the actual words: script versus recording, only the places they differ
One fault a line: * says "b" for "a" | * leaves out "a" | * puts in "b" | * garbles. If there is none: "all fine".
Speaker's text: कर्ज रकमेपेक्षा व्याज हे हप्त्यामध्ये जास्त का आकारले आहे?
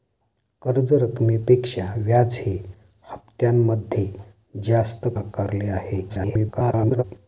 * leaves out "का"
* garbles